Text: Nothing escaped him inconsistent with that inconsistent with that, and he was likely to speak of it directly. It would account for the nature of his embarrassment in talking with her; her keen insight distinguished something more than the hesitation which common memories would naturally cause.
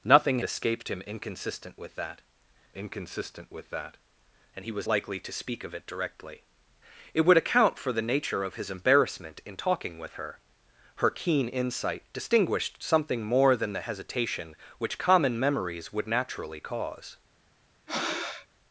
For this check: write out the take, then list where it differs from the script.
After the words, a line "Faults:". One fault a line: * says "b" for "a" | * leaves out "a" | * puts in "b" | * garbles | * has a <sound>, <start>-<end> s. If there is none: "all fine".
Nothing escaped him inconsistent with that inconsistent with that, and he was likely to speak of it directly. It would account for the nature of his embarrassment in talking with her; her keen insight distinguished something more than the hesitation which common memories would naturally cause.
Faults:
* has a breath, 17.9-18.5 s